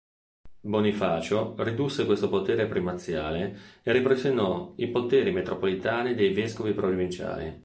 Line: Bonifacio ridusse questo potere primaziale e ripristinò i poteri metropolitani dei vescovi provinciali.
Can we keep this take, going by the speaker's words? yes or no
yes